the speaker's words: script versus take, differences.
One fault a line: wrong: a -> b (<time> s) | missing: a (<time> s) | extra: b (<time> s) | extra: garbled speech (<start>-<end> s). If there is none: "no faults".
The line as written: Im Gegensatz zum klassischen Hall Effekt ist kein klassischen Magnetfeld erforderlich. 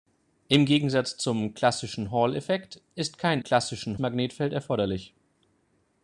no faults